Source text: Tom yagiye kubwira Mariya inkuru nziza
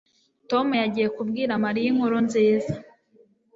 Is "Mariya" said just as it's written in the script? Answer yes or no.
yes